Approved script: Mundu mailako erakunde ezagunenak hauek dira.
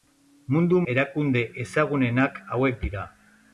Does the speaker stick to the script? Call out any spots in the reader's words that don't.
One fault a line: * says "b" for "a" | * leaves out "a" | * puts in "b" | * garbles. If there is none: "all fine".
* leaves out "mailako"